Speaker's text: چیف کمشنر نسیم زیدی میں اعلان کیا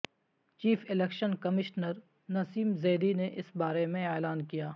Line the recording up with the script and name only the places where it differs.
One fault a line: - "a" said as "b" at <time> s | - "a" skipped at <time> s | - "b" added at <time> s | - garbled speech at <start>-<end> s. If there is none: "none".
- "الیکشن" added at 0.9 s
- "نے اس بارے" added at 3.1 s